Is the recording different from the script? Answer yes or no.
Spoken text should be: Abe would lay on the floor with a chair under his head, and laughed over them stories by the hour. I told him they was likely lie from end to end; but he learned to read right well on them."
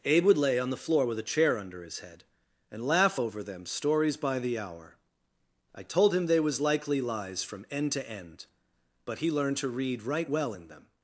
yes